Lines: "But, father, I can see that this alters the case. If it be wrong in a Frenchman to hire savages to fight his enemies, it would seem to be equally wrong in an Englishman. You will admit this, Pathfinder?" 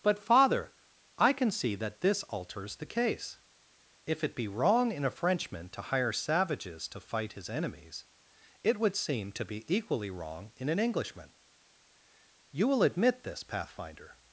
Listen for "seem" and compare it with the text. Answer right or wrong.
right